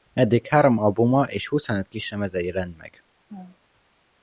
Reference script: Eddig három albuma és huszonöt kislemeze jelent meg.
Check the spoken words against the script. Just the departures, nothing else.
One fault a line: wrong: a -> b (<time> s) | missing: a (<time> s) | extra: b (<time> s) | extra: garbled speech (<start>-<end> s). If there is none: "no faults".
no faults